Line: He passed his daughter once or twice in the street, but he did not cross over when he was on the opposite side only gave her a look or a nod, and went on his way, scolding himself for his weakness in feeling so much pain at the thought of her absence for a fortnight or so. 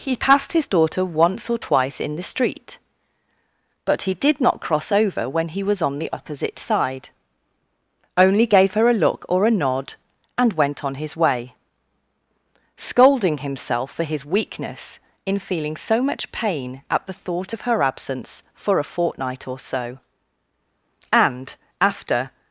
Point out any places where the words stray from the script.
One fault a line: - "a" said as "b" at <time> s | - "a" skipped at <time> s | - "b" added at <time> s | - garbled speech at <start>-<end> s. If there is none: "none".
- "And after" added at 21.1 s